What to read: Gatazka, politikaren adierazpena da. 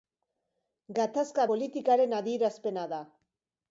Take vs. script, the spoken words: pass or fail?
pass